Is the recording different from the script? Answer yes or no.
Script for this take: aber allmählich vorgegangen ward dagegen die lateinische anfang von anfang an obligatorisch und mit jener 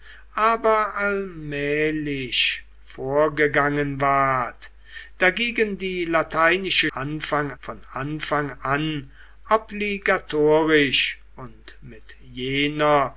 no